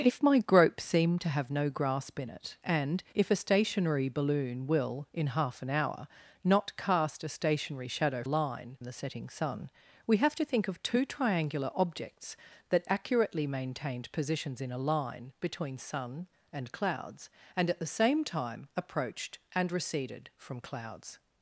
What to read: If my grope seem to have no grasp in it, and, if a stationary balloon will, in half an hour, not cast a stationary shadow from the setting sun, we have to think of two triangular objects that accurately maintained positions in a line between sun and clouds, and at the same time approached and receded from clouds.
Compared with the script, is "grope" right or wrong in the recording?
right